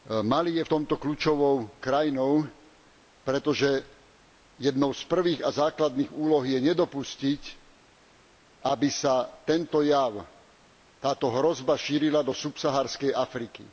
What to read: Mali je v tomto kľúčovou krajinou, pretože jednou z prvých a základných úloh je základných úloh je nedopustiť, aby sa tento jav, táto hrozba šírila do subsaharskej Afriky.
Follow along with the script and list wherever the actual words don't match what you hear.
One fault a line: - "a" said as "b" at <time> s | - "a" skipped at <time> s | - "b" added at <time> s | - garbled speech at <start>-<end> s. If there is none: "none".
- "základných úloh je" skipped at 6.6 s